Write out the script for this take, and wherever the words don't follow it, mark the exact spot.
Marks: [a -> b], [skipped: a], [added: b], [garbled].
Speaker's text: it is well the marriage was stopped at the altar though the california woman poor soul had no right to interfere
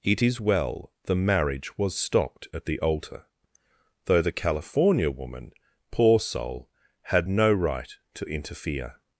it is well the marriage was stopped at the altar though the california woman poor soul had no right to interfere